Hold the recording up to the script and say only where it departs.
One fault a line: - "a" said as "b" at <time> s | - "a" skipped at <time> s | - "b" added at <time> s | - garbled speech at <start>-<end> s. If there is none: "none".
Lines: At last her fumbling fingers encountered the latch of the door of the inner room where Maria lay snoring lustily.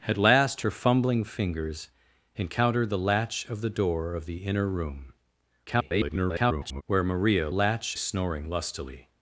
- garbled speech at 5.7-6.8 s
- "lay" said as "latch" at 7.5 s